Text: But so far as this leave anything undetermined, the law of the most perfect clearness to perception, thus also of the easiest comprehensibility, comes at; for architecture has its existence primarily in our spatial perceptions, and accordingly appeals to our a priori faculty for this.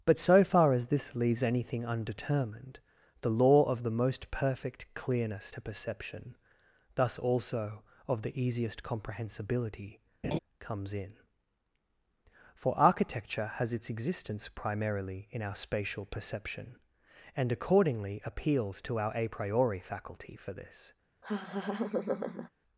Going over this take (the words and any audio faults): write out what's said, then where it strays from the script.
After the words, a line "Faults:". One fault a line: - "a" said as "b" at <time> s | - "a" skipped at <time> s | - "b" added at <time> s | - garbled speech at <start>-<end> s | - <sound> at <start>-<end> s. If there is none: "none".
But so far as this leaves anything undetermined, the law of the most perfect clearness to perception, thus also of the easiest comprehensibility, comes in; for architecture has its existence primarily in our spatial perception, and accordingly appeals to our a priori faculty for this.
Faults:
- "leave" said as "leaves" at 1.1 s
- laugh at 10.2-10.4 s
- "at" said as "in" at 10.9 s
- "perceptions" said as "perception" at 16.0 s
- laugh at 21.2-22.5 s